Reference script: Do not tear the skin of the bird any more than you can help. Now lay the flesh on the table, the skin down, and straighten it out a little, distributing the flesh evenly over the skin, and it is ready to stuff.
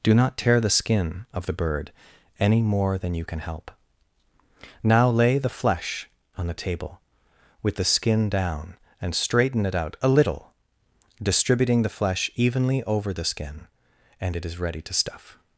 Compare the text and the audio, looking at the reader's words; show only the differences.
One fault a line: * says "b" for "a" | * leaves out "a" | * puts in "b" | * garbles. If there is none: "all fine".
* puts in "with"